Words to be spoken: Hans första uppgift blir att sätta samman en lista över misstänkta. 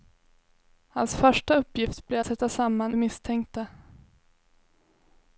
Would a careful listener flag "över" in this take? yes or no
yes